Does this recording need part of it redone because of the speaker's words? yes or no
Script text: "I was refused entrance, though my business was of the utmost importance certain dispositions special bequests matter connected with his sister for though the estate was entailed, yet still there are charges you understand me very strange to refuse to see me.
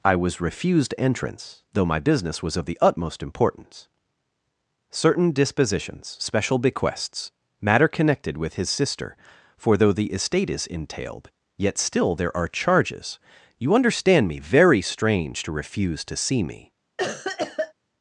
yes